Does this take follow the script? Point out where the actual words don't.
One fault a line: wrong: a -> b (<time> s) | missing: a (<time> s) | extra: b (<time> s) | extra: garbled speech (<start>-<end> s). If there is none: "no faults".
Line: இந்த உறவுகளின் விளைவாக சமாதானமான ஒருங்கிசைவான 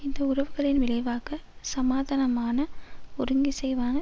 no faults